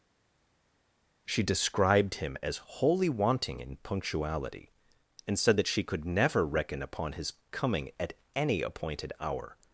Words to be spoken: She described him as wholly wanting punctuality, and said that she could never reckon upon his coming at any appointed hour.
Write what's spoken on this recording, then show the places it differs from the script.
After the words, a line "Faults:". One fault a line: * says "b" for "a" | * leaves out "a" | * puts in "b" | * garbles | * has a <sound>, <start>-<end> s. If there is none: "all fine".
She described him as wholly wanting in punctuality, and said that she could never reckon upon his coming at any appointed hour.
Faults:
* puts in "in"